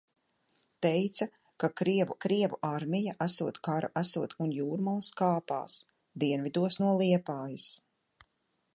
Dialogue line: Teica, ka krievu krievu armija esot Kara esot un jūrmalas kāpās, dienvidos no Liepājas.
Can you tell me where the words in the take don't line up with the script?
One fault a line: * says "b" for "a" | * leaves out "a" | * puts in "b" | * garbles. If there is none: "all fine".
all fine